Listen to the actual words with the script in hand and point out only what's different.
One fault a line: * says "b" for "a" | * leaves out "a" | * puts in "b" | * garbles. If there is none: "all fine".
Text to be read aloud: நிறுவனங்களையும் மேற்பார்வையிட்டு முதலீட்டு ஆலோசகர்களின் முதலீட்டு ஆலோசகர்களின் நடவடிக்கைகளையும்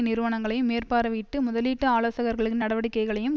* leaves out "முதலீட்டு ஆலோசகர்களின்"